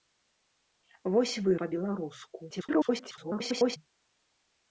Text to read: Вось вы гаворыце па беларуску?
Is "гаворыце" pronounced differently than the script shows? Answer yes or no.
yes